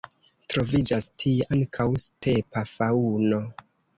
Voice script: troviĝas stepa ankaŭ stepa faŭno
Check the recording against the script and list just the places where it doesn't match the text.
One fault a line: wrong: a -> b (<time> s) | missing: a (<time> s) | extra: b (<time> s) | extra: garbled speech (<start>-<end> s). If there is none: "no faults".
wrong: stepa -> tie (1.2 s)